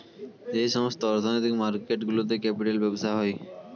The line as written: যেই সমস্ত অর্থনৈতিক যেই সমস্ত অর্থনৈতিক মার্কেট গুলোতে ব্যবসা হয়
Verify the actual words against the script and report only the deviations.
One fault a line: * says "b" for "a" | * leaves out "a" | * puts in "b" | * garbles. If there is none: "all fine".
* leaves out "যেই সমস্ত অর্থনৈতিক"
* puts in "ক্যাপিটাল"